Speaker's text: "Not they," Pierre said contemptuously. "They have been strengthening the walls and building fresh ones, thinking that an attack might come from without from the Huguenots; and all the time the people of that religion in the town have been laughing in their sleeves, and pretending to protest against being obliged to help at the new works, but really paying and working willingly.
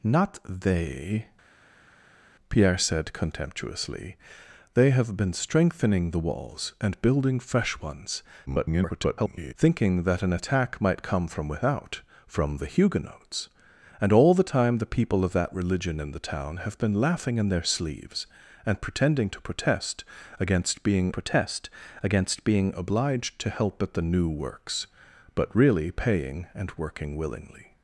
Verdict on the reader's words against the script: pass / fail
fail